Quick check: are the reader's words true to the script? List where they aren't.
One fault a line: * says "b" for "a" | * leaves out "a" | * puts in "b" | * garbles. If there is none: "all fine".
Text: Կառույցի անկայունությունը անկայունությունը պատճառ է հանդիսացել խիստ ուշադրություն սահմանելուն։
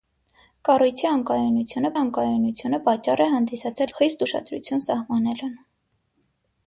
all fine